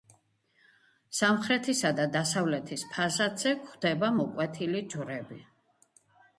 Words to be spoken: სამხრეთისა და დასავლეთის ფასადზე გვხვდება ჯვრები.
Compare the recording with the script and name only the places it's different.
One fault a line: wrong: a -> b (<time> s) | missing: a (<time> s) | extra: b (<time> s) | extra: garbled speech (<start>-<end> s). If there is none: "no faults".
extra: მოკვეთილი (4.2 s)